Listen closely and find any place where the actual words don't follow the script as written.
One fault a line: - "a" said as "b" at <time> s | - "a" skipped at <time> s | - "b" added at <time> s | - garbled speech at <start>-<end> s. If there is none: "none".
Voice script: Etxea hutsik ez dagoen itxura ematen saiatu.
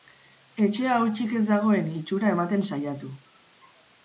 none